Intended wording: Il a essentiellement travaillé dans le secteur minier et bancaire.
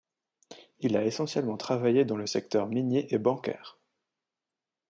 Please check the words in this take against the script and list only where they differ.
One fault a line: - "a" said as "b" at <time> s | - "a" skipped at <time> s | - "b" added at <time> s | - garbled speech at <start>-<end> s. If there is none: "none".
none